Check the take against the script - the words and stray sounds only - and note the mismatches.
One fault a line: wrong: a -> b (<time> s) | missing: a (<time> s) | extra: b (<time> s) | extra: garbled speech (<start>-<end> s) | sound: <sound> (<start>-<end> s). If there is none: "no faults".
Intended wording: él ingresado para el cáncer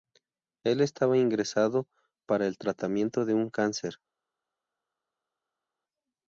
extra: estaba (0.8 s)
extra: tratamiento de un (2.6 s)